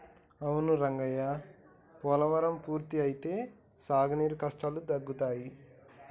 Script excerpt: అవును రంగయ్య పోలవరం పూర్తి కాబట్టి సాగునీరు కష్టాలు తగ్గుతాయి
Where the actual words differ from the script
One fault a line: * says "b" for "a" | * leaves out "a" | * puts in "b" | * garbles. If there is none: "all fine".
* says "అయితే" for "కాబట్టి"